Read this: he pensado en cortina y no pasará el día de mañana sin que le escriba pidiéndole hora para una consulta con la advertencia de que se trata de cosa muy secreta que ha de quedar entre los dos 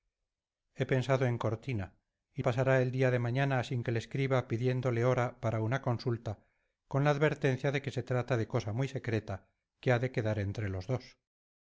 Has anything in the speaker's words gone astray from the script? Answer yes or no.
yes